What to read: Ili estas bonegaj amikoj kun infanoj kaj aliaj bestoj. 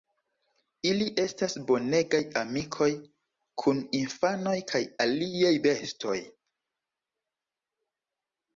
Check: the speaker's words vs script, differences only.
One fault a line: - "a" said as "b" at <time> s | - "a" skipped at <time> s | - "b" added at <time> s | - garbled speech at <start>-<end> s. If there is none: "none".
none